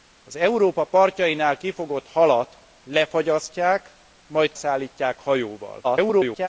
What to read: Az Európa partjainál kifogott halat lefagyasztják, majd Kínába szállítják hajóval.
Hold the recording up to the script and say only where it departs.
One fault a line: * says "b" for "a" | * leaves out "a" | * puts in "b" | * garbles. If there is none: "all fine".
* leaves out "Kínába"
* garbles